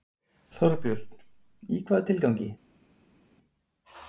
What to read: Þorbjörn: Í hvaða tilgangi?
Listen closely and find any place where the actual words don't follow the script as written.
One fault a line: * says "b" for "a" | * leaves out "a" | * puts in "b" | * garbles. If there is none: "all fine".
all fine